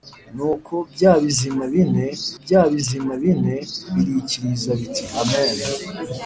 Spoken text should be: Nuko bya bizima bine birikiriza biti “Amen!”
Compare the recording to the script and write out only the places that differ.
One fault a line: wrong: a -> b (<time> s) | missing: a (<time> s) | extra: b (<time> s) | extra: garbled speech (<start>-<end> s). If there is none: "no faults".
extra: bya bizima bine (2.4 s)